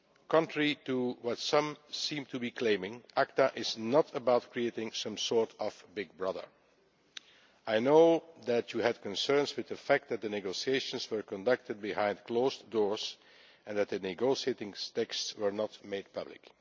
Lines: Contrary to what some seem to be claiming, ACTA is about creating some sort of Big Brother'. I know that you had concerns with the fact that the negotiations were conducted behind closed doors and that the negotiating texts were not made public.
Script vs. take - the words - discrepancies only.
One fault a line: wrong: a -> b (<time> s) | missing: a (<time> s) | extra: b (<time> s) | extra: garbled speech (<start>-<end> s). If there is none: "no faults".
extra: not (3.8 s)